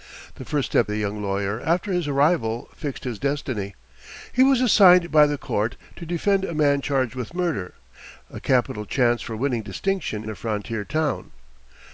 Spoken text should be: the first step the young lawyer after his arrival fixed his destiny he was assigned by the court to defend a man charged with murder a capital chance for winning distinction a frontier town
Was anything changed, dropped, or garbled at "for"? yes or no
no